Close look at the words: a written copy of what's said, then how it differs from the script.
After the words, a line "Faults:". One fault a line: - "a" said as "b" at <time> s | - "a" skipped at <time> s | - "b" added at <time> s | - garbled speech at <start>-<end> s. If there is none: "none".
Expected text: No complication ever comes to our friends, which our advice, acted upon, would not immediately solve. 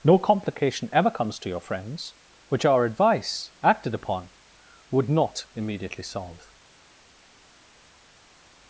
No complication ever comes to your friends, which our advice, acted upon, would not immediately solve.
Faults:
- "our" said as "your" at 1.5 s